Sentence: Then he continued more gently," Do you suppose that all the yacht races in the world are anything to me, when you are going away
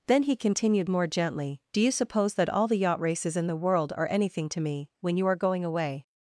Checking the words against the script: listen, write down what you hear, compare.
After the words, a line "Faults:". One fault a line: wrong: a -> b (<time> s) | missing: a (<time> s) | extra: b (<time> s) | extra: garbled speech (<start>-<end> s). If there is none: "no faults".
Then he continued more gently," Do you suppose that all the yacht races in the world are anything to me, when you are going away
Faults:
no faults